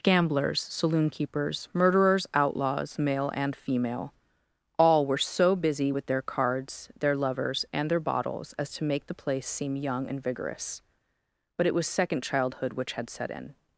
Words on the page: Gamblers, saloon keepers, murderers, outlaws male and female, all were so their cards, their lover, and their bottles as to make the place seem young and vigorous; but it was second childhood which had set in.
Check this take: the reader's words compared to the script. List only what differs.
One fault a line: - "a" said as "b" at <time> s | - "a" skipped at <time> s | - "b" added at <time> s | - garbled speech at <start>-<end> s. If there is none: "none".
- "busy with" added at 5.5 s
- "lover" said as "lovers" at 7.2 s